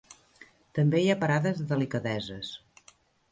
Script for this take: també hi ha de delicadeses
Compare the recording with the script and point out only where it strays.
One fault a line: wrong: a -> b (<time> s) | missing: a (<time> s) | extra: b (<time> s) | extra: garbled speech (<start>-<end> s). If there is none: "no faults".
extra: parades (1.2 s)